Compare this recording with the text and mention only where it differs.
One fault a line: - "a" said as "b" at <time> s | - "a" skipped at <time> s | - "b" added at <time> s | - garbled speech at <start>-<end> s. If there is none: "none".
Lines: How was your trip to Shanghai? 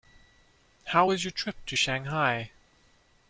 none